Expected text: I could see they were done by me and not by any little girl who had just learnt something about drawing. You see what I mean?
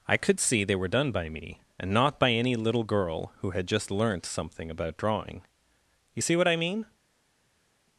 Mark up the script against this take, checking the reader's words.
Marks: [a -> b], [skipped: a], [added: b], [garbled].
I could see they were done by me and not by any little girl who had just learnt something about drawing. You see what I mean?